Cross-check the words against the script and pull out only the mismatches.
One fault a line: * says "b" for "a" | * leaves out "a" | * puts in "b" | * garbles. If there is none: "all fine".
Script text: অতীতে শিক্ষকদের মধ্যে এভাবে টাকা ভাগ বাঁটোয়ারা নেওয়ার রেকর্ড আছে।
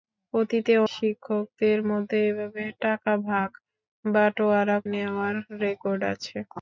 all fine